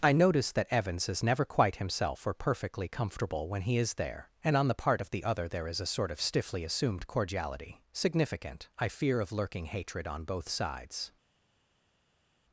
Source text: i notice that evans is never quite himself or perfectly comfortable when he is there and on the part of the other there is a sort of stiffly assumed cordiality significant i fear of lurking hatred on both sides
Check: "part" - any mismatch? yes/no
no